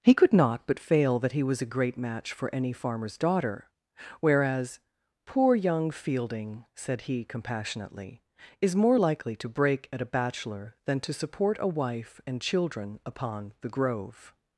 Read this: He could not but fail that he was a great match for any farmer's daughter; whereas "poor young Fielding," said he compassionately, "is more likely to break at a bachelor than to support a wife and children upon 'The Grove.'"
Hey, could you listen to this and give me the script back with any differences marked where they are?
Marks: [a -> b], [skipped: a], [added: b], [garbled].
He could not but fail that he was a great match for any farmer's daughter; whereas "poor young Fielding," said he compassionately, "is more likely to break at a bachelor than to support a wife and children upon 'The Grove.'"